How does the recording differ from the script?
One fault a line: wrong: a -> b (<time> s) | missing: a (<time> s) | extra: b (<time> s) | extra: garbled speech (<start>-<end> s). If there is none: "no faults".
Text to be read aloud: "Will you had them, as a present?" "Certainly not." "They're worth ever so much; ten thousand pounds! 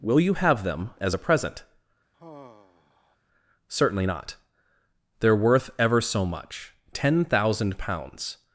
wrong: had -> have (0.3 s)